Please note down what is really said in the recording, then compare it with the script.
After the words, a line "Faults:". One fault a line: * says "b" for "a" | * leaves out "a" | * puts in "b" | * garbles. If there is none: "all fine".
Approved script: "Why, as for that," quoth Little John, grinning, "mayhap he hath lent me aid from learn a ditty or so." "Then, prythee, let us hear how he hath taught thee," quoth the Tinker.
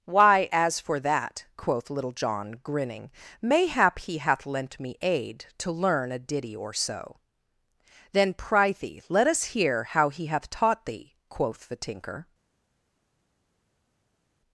"Why, as for that," quoth Little John, grinning, "mayhap he hath lent me aid to learn a ditty or so." "Then, prythee, let us hear how he hath taught thee," quoth the Tinker.
Faults:
* says "to" for "from"